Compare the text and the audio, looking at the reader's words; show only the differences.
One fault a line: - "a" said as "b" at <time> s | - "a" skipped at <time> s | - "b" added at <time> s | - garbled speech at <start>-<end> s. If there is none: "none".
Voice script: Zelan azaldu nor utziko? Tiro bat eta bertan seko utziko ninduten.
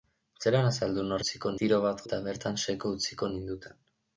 none